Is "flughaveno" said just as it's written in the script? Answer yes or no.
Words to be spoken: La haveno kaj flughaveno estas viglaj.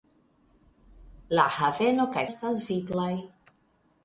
no